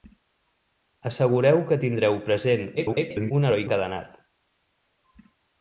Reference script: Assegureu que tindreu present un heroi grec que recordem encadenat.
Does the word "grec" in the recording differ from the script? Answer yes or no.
yes